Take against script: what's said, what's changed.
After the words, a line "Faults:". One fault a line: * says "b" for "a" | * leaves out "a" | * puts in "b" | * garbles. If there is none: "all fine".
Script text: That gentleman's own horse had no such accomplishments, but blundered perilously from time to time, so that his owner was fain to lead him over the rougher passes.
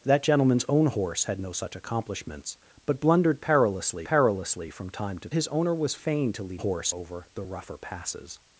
That gentleman's own horse had no such accomplishments, but blundered perilously perilously from time to his owner was fain to lead horse over the rougher passes.
Faults:
* puts in "perilously"
* leaves out "time so that"
* says "horse" for "him"